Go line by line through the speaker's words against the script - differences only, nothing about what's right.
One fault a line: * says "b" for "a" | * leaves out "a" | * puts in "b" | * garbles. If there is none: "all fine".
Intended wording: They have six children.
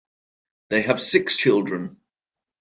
all fine